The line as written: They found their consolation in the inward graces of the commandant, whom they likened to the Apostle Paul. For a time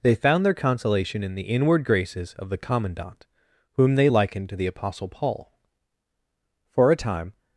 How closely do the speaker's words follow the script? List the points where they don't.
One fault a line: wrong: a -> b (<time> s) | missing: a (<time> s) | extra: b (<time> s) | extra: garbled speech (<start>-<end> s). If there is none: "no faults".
no faults